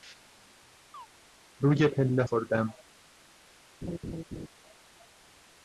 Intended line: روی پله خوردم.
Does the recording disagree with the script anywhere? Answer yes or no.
no